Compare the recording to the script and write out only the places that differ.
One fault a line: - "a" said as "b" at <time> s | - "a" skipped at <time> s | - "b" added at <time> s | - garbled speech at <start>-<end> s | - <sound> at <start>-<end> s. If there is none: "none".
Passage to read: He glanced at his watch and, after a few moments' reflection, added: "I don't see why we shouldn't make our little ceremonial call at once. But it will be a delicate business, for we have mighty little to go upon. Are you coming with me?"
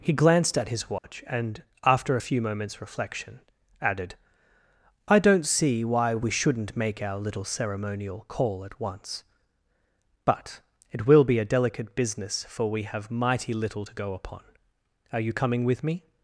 - dropout at 1.0-1.0 s